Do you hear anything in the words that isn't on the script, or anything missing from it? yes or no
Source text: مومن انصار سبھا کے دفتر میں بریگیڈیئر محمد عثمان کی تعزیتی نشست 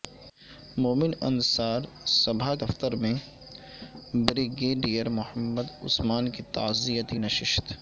yes